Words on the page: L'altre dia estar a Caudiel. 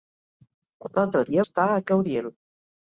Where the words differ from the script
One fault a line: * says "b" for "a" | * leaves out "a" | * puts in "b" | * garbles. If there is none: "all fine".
all fine